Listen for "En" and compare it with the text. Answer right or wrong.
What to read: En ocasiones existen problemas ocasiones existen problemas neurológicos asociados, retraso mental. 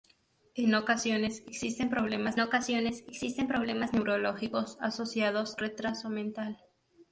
right